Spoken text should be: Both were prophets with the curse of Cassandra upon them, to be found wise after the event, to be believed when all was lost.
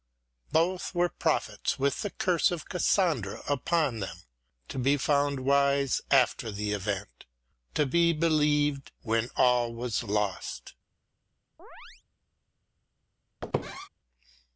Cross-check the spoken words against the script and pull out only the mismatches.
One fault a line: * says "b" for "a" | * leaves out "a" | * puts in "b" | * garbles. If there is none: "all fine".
all fine